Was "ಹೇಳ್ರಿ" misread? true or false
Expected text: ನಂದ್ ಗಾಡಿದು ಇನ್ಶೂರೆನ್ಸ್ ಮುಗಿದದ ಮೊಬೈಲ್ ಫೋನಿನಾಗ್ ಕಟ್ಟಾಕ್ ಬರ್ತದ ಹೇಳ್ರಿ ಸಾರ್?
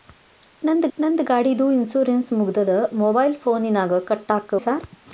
true